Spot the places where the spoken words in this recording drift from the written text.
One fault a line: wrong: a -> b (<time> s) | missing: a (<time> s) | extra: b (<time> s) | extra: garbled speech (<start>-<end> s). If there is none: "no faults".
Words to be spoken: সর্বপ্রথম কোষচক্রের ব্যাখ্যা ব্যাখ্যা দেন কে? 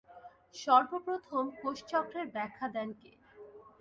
missing: ব্যাখ্যা (2.7 s)